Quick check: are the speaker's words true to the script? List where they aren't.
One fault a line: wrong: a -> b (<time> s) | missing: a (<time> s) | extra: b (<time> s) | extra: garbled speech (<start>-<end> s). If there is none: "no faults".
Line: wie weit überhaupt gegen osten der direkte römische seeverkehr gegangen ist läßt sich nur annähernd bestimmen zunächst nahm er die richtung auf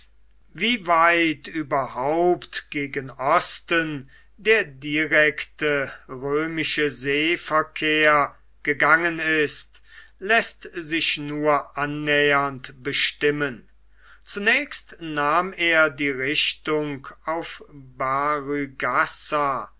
no faults